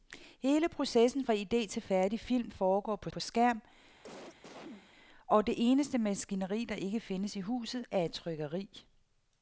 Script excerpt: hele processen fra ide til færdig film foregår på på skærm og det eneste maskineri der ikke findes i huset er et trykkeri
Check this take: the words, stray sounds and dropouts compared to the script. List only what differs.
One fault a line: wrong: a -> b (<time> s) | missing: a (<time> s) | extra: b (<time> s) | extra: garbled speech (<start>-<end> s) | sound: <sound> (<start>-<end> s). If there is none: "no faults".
sound: cough (4.0-4.9 s)